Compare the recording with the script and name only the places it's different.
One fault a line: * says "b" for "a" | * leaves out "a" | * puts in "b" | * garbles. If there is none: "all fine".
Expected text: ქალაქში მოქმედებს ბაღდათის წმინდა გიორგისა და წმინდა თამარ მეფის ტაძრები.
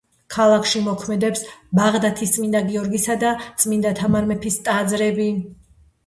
all fine